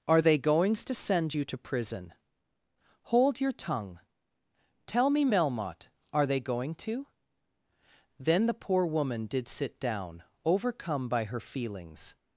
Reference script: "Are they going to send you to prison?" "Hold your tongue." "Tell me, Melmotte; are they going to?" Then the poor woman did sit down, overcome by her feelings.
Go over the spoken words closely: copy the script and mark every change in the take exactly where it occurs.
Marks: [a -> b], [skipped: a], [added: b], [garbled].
"Are they [going -> goings] to send you to prison?" "Hold your tongue." "Tell me, Melmotte; are they going to?" Then the poor woman did sit down, overcome by her feelings.